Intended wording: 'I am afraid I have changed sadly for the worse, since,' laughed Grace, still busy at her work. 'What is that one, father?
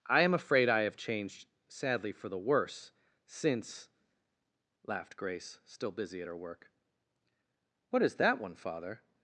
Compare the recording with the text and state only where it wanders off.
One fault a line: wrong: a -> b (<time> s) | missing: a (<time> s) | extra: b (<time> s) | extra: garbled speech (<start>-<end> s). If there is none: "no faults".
no faults